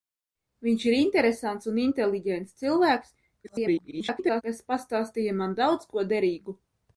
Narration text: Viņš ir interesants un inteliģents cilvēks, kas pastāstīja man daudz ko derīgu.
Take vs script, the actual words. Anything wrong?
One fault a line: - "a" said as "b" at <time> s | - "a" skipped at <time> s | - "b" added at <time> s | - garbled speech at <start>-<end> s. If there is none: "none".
- garbled speech at 3.4-4.4 s